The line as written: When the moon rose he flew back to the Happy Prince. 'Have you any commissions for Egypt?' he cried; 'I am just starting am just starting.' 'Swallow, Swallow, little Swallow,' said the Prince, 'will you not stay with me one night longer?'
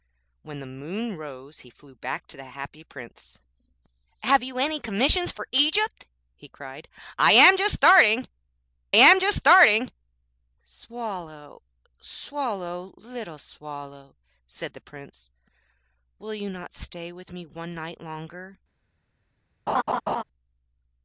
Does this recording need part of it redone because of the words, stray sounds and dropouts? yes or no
yes